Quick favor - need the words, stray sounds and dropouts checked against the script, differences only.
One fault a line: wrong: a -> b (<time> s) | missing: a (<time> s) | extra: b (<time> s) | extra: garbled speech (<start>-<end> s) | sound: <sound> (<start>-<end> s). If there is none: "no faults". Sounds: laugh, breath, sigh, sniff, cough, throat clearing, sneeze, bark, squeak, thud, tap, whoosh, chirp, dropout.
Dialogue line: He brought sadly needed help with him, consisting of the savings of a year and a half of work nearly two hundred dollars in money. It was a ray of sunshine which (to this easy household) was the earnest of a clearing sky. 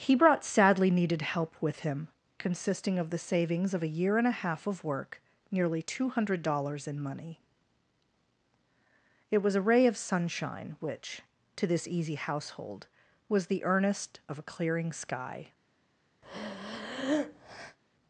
sound: breath (16.2-17.8 s)